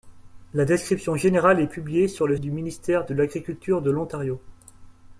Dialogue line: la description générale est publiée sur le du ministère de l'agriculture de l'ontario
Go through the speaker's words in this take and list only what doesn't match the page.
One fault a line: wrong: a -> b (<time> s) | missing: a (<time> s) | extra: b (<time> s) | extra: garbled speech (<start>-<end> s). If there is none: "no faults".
no faults